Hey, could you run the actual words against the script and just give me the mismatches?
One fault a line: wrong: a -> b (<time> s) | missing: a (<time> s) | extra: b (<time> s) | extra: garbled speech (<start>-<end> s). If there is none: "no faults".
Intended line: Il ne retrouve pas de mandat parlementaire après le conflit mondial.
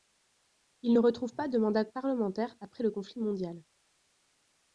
no faults